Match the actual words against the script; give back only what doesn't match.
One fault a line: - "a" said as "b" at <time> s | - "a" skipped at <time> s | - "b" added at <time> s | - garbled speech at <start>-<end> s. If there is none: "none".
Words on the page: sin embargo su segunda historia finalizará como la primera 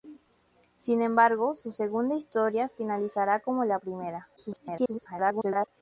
- garbled speech at 4.4-5.7 s